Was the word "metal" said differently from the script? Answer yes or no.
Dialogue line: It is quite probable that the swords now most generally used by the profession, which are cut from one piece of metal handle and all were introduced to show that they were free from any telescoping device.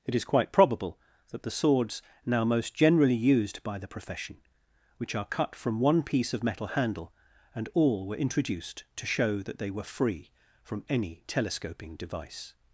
no